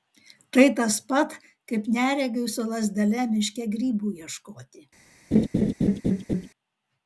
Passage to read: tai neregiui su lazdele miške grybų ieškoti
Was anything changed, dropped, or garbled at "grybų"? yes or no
no